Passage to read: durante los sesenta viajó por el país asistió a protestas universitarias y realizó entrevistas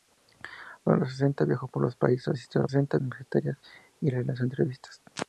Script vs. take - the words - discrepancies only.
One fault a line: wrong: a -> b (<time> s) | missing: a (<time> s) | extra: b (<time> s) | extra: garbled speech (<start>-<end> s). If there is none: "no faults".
wrong: protestas -> sesenta (2.7 s)